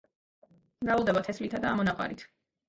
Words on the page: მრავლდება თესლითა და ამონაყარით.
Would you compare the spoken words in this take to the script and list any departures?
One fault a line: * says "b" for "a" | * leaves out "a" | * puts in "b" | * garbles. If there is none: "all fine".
all fine